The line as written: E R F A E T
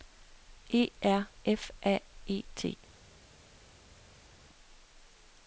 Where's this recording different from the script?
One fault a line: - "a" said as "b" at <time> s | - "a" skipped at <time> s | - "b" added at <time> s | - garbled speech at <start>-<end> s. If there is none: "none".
none